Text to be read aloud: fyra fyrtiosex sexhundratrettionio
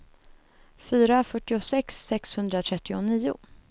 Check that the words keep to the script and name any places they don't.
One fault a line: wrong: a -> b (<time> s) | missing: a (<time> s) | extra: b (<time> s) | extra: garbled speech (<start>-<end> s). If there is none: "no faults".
no faults